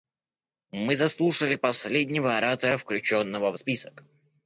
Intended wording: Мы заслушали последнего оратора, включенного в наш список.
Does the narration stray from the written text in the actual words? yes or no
yes